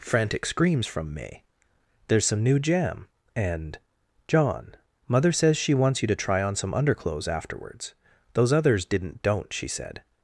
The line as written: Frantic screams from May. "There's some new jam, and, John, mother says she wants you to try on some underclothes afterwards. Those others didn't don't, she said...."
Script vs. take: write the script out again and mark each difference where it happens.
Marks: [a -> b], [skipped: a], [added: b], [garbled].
Frantic screams from May. "There's some new jam, and, John, mother says she wants you to try on some underclothes afterwards. Those others didn't don't, she said...."